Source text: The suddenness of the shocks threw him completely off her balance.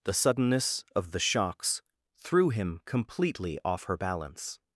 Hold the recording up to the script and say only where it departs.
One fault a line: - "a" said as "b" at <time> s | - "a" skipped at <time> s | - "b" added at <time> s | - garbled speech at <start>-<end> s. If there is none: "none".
none